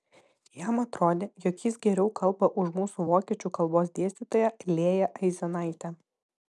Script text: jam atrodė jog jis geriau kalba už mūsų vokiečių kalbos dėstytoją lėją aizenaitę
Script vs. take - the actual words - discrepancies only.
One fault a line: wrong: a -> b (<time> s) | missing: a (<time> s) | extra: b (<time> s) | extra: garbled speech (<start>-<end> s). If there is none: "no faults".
no faults